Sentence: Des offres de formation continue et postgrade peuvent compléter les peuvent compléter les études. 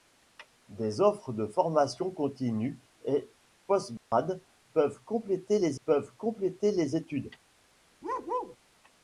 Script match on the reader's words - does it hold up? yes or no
yes